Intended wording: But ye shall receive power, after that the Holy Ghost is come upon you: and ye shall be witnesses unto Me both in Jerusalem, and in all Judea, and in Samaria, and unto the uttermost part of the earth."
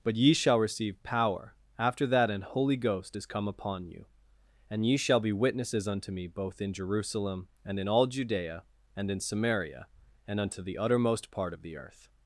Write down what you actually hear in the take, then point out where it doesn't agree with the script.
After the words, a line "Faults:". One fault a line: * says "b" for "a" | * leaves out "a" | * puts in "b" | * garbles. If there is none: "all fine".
But ye shall receive power, after that an Holy Ghost is come upon you: and ye shall be witnesses unto Me both in Jerusalem, and in all Judea, and in Samaria, and unto the uttermost part of the earth."
Faults:
* says "an" for "the"